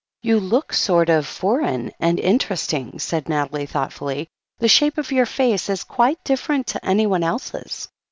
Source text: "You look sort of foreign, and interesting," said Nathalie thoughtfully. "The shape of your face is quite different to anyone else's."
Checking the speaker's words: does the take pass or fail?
pass